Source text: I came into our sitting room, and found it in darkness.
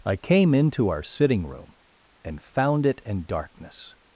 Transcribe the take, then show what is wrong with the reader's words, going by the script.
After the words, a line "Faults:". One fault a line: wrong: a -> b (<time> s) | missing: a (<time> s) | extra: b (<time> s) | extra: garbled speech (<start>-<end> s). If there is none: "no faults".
I came into our sitting room, and found it in darkness.
Faults:
no faults